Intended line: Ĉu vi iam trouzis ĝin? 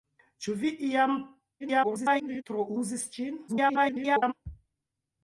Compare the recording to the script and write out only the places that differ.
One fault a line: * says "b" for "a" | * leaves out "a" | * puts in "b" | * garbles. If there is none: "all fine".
* garbles
* garbles